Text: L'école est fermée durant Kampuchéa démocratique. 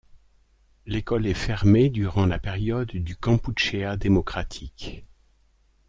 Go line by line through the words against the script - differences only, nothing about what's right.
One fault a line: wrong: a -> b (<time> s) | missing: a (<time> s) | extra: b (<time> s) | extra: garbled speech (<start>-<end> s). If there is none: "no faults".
extra: la période du (2.2 s)